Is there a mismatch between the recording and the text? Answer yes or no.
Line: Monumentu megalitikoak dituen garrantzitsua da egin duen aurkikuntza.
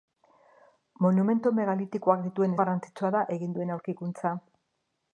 no